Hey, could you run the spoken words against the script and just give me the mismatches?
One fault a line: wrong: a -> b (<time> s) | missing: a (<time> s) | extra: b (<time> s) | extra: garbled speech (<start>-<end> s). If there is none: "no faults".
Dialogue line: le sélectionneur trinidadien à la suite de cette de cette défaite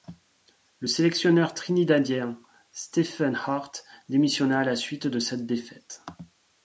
extra: stephen hart démissionna (2.7 s)
missing: de cette (5.4 s)